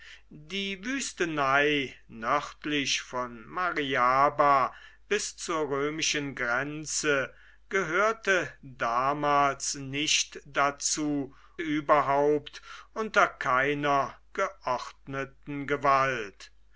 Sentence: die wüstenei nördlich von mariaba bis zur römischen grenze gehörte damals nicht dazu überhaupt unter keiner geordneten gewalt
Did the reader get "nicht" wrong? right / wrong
right